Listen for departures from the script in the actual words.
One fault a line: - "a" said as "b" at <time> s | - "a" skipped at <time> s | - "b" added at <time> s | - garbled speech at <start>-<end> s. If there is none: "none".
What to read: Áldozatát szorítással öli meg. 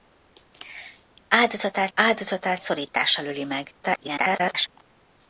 - "áldozatát" added at 1.9 s
- garbled speech at 3.8-4.7 s